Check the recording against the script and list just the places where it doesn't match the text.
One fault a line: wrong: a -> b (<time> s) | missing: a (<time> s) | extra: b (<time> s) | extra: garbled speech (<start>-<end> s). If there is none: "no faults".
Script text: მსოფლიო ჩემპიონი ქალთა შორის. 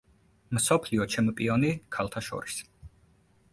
no faults